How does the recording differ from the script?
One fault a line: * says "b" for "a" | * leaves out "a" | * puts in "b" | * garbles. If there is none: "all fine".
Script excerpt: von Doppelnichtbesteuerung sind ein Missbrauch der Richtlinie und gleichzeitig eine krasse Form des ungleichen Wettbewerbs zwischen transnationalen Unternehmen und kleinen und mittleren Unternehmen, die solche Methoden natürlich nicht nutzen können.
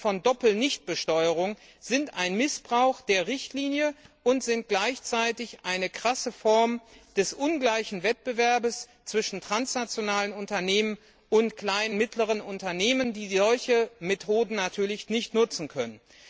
all fine